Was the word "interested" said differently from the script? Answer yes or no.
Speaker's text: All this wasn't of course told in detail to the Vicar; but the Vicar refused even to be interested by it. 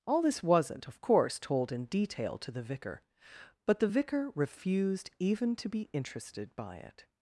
no